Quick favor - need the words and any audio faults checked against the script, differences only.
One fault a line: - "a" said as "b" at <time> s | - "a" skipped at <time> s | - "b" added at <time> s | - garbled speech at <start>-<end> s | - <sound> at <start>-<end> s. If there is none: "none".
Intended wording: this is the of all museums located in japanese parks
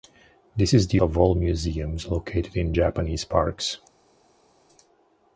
none